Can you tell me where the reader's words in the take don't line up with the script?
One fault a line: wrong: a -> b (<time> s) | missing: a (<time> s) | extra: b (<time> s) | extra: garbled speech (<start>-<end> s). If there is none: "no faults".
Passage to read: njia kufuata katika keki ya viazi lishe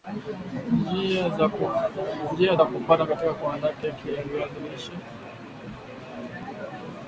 extra: za (2.5 s)
extra: kuandaa (3.3 s)